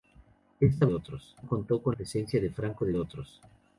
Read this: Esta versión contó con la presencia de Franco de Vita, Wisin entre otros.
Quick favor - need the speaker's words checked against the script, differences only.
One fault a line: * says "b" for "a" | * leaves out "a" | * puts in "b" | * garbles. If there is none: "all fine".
* says "otros" for "versión"
* leaves out "la"
* leaves out "Vita Wisin entre"